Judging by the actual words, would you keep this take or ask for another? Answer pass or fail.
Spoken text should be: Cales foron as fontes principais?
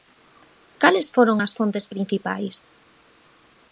pass